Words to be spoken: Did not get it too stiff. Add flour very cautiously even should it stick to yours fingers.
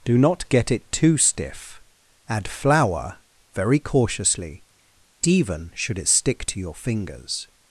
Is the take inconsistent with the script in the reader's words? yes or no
yes